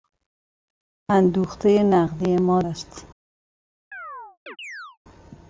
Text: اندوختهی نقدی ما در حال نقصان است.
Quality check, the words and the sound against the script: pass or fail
fail